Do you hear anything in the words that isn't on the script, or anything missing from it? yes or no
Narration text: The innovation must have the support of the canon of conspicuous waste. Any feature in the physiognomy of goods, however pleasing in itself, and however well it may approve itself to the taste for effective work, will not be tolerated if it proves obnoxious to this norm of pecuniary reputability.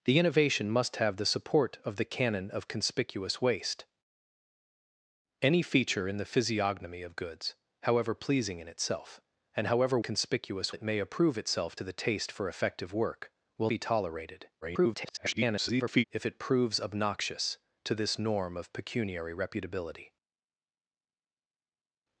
yes